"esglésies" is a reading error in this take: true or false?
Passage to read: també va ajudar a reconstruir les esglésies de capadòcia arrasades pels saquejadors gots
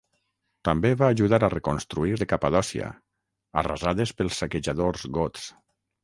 true